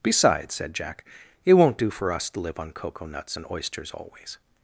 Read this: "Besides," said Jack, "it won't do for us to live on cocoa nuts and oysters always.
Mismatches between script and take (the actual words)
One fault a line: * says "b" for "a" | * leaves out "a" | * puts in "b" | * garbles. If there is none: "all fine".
all fine